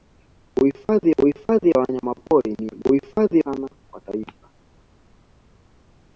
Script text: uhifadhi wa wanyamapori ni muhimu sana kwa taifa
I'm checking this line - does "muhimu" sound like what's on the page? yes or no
no